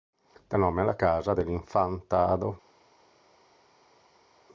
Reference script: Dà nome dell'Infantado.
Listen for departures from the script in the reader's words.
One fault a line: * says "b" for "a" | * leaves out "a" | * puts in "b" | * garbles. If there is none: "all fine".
* puts in "alla Casa"